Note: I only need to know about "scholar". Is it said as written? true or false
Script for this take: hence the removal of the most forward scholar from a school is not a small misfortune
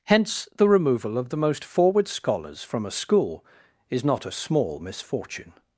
false